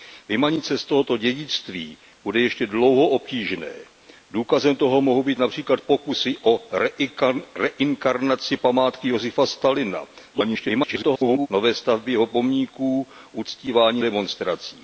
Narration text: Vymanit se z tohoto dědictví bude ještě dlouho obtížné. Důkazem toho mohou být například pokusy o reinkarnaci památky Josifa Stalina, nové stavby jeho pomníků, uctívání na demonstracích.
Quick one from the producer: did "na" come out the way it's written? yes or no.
no